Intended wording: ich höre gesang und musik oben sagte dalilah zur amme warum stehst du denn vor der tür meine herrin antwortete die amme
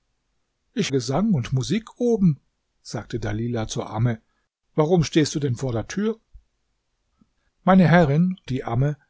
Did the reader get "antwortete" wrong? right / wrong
wrong